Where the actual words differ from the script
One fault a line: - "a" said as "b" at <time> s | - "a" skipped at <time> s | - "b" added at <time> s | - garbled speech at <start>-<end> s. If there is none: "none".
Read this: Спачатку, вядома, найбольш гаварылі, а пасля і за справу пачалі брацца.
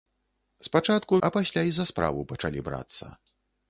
- "вядома найбольш гаварылі" skipped at 1.2 s